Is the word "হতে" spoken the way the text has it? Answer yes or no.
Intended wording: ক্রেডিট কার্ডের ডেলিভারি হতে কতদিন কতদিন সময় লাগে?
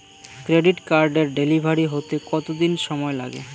yes